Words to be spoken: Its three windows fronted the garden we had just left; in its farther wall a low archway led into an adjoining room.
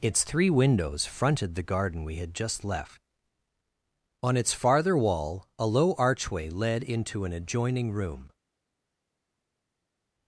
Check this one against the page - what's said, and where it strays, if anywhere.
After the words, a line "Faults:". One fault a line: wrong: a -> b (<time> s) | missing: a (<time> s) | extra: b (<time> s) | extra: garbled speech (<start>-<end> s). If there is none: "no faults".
Its three windows fronted the garden we had just left; on its farther wall a low archway led into an adjoining room.
Faults:
wrong: in -> on (4.2 s)